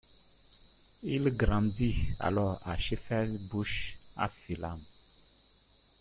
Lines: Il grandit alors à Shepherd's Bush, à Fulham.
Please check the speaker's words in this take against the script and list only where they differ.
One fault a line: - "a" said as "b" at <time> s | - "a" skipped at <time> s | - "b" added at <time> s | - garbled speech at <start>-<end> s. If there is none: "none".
none